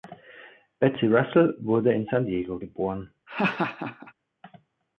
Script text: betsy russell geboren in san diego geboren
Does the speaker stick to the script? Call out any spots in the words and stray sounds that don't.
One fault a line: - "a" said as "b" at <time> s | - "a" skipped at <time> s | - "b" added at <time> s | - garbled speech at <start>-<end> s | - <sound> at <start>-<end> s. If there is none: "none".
- "geboren" said as "wurde" at 1.6 s
- laugh at 3.3-4.1 s